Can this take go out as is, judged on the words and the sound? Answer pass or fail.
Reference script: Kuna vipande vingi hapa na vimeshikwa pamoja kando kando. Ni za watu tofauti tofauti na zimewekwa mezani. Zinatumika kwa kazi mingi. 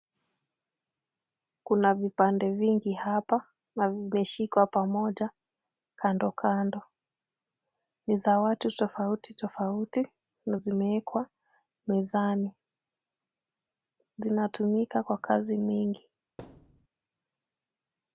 fail